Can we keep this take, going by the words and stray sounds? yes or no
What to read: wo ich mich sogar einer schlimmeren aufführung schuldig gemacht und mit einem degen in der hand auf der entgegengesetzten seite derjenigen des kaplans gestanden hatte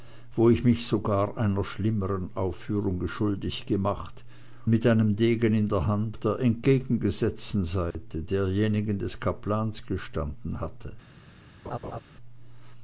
no